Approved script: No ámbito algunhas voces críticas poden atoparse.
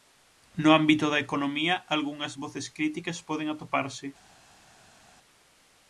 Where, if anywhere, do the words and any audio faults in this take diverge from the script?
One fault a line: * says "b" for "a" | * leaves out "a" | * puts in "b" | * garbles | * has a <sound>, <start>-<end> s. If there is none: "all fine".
* puts in "da economía"